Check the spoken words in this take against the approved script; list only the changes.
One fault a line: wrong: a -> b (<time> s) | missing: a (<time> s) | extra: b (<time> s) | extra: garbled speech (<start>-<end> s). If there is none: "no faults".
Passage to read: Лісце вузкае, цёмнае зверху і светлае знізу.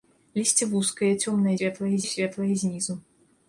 wrong: зверху -> светлае (1.6 s)